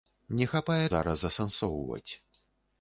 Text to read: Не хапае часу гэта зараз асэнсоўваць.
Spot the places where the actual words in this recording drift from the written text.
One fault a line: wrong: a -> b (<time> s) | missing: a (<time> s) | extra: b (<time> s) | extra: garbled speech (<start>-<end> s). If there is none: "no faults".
missing: часу гэта (0.8 s)